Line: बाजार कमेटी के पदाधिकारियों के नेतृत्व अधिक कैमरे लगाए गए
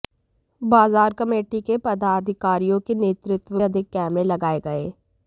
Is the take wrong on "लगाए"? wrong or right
right